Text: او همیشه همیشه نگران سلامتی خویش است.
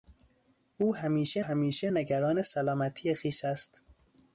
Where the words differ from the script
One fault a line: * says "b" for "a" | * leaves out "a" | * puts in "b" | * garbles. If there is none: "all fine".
all fine